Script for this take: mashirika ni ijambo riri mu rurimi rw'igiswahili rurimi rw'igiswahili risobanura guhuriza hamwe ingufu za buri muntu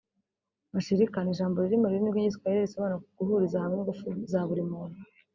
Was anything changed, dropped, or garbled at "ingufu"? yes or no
no